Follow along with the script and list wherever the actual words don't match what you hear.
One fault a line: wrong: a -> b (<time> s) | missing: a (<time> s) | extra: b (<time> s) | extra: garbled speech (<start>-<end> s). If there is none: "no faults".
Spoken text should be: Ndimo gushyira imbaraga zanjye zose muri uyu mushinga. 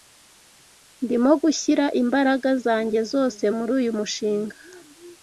no faults